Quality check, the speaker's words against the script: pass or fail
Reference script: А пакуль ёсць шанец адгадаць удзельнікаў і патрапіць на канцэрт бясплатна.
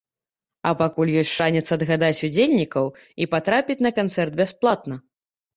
pass